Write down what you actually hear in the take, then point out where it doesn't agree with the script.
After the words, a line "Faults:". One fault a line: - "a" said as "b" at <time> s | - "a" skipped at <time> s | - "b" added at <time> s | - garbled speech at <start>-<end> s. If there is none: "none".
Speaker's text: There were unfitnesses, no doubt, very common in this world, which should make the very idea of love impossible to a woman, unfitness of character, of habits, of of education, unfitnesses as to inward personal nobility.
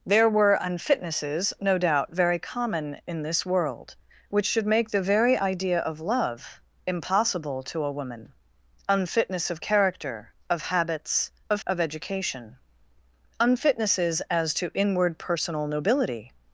There were unfitnesses, no doubt, very common in this world, which should make the very idea of love impossible to a woman, unfitness of character, of habits, of of education, unfitnesses as to inward personal nobility.
Faults:
none